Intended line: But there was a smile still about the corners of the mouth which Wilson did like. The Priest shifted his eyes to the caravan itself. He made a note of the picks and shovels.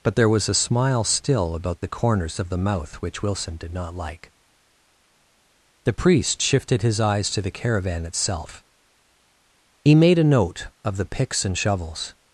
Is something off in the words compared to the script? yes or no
yes